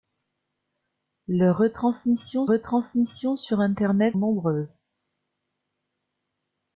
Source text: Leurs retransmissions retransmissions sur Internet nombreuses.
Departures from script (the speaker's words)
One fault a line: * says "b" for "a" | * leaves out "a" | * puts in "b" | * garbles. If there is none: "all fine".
all fine